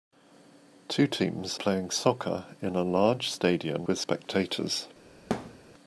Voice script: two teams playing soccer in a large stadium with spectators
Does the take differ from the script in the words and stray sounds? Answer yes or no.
yes